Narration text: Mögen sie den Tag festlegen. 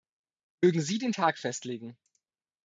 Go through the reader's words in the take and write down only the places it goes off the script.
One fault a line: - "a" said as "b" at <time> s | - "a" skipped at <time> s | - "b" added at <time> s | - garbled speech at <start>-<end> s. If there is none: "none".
none